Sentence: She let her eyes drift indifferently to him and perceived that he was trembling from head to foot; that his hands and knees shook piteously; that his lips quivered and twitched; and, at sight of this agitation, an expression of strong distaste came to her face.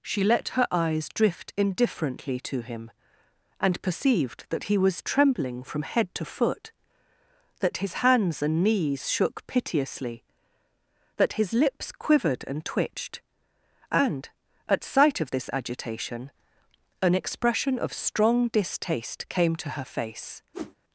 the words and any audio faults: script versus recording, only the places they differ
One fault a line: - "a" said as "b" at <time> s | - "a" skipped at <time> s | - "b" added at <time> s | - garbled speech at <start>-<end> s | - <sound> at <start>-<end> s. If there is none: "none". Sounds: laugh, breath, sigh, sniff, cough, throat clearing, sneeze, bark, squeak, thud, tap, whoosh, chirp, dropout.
- whoosh at 20.5-20.8 s